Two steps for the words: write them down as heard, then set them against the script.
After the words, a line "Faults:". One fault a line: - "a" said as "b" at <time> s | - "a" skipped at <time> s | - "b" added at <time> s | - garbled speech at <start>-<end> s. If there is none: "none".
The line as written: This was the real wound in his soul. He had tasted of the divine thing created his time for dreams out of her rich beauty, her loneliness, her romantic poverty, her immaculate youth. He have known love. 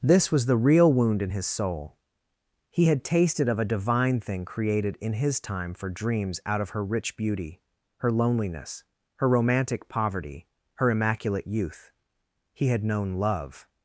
This was the real wound in his soul. He had tasted of a divine thing created in his time for dreams out of her rich beauty, her loneliness, her romantic poverty, her immaculate youth. He had known love.
Faults:
- "the" said as "a" at 3.6 s
- "in" added at 5.0 s
- "have" said as "had" at 12.7 s